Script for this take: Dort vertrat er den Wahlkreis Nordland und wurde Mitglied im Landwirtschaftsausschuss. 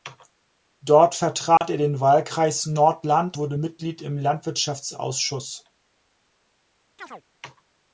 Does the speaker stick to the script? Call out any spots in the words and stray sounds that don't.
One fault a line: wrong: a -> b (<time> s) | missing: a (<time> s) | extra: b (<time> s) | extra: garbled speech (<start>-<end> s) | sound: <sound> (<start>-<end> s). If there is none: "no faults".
sound: dropout (1.6-1.6 s)
missing: und (3.4 s)
sound: chirp (7.0-7.2 s)